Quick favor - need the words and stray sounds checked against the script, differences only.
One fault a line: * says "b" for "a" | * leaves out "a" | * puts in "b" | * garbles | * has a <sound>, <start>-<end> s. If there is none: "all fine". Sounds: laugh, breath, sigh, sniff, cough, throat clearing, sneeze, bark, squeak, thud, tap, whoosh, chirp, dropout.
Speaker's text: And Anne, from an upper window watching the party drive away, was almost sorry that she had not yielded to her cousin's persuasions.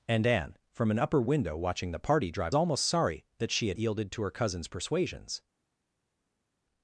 * leaves out "away was"
* leaves out "not"